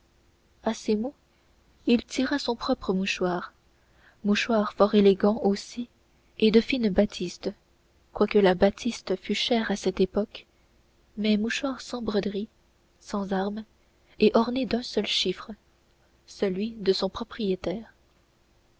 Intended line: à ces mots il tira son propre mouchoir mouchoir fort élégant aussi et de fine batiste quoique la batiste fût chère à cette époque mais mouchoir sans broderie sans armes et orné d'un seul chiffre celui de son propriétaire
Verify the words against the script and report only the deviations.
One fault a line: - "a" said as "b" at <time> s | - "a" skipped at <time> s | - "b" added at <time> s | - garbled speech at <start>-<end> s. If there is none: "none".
none